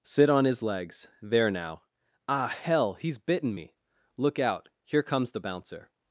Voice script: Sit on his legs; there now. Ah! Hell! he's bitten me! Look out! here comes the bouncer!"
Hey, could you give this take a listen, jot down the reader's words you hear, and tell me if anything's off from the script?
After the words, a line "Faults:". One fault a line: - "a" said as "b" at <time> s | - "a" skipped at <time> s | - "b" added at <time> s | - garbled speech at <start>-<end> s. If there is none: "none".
Sit on his legs; there now. Ah! Hell! he's bitten me! Look out! here comes the bouncer!"
Faults:
none